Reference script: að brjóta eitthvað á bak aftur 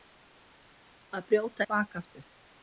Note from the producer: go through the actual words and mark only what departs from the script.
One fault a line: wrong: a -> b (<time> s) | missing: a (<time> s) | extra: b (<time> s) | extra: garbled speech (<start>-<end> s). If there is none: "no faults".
missing: eitthvað (1.7 s)